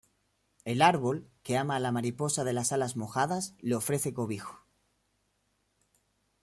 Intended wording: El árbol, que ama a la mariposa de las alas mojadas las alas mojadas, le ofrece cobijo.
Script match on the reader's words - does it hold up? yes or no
no